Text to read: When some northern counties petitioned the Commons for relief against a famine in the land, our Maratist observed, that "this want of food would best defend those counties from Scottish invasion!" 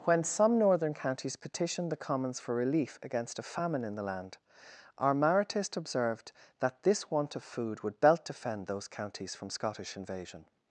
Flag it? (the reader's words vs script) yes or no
yes